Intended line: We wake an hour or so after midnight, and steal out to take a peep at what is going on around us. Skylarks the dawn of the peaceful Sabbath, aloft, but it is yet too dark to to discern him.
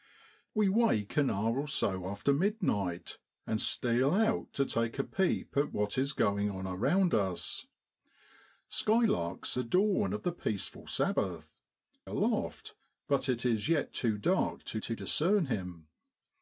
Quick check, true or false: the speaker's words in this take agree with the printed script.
true